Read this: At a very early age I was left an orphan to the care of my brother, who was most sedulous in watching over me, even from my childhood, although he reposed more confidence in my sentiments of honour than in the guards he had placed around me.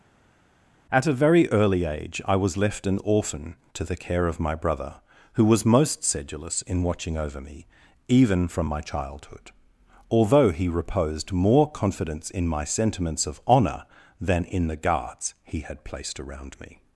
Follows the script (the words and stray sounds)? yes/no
yes